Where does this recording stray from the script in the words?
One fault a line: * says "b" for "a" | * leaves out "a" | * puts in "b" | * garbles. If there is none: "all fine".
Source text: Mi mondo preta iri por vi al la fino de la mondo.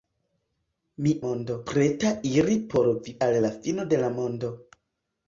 all fine